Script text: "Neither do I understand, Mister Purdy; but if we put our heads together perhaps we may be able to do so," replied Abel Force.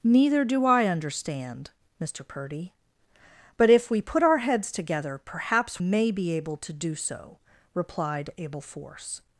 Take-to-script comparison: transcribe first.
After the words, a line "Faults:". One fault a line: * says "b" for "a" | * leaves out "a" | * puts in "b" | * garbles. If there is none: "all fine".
"Neither do I understand, Mister Purdy; but if we put our heads together perhaps may be able to do so," replied Abel Force.
Faults:
* leaves out "we"